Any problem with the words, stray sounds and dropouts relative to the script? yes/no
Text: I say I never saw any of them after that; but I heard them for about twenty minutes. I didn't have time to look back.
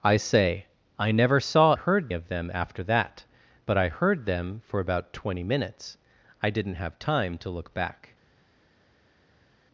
yes